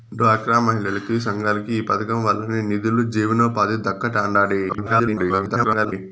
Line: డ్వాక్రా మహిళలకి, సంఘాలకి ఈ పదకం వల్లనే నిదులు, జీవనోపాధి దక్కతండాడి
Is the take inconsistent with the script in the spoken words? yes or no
yes